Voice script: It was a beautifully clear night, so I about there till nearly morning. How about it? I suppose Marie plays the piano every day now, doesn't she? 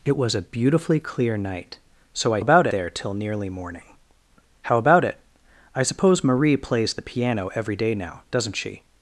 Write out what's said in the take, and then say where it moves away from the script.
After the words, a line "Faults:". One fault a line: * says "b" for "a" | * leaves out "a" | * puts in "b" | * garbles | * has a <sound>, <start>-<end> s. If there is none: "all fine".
It was a beautifully clear night, so I about there till nearly morning. How about it? I suppose Marie plays the piano every day now, doesn't she?
Faults:
all fine